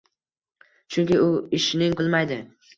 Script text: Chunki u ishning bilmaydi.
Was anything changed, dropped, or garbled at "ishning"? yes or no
no